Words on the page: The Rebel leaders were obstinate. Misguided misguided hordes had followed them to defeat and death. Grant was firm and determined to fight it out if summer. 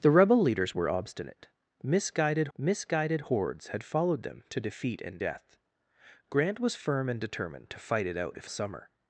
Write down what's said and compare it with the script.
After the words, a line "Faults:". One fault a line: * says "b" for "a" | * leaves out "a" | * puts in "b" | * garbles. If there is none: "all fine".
The Rebel leaders were obstinate. Misguided misguided hordes had followed them to defeat and death. Grant was firm and determined to fight it out if summer.
Faults:
all fine